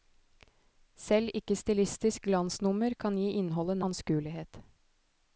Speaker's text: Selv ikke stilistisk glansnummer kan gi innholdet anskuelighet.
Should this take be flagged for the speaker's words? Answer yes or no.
no